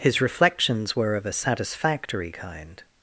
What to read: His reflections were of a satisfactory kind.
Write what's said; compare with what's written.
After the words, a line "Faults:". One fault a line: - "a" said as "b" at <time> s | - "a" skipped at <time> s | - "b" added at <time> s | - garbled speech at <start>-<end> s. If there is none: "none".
His reflections were of a satisfactory kind.
Faults:
none